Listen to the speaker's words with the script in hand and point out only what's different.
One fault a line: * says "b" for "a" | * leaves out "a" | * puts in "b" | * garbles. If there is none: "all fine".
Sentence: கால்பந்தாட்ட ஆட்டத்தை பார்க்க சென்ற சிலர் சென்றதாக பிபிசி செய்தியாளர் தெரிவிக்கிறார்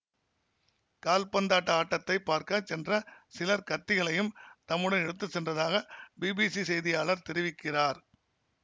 * puts in "கத்திகளையும் தம்முடன் எடுத்து"